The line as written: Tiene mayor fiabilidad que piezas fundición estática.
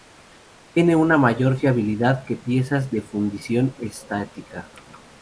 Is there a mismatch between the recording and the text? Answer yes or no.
yes